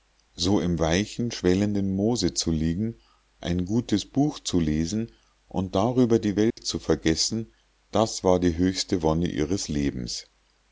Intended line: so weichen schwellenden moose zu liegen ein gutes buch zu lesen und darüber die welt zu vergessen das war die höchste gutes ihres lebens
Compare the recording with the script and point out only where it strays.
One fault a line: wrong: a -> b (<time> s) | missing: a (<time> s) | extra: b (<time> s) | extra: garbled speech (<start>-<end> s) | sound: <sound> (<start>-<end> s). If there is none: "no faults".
extra: im (0.6 s)
sound: dropout (6.5-6.6 s)
wrong: gutes -> wonne (9.0 s)